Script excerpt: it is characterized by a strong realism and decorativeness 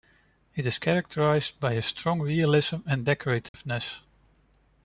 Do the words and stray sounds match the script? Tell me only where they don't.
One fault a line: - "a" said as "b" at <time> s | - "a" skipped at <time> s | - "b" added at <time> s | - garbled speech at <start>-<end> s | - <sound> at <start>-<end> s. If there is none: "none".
- dropout at 3.5-3.5 s